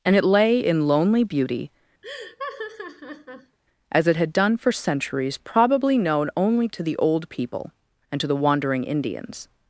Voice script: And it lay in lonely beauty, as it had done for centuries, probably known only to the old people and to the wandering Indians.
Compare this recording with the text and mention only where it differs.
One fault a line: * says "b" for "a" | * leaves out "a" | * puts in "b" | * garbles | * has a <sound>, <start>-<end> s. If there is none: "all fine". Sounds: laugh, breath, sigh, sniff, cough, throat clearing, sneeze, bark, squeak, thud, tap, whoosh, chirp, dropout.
* has a laugh, 2.0-3.6 s